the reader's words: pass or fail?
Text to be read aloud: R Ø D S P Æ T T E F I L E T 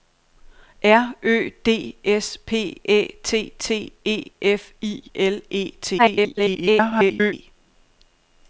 fail